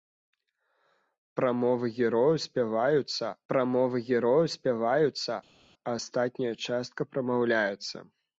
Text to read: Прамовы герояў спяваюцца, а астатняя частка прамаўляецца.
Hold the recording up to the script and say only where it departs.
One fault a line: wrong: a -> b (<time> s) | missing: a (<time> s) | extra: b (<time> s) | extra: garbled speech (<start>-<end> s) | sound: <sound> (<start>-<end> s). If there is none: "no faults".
extra: прамовы герояў спяваюцца (3.5 s)